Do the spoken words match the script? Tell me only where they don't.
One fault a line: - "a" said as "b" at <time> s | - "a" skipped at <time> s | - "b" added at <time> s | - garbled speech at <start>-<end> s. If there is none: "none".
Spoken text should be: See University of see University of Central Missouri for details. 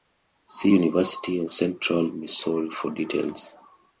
- "see University of" skipped at 1.5 s